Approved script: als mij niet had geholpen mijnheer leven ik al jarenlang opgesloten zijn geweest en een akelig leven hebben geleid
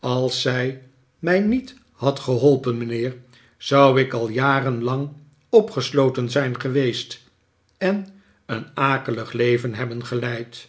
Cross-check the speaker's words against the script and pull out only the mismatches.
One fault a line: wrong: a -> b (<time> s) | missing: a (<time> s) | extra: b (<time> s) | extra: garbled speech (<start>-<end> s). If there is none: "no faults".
extra: zij (0.4 s)
wrong: leven -> zou (3.6 s)